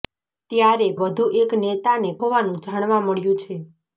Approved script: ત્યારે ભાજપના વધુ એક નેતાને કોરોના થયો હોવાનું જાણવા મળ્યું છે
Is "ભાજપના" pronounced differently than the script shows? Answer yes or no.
yes